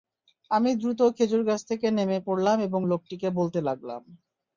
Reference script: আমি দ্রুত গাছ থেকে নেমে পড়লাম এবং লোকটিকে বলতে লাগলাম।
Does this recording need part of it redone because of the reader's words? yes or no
yes